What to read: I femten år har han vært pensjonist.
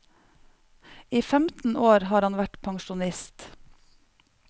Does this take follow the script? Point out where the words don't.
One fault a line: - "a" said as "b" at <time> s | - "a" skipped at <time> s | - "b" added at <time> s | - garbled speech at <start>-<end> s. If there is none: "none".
none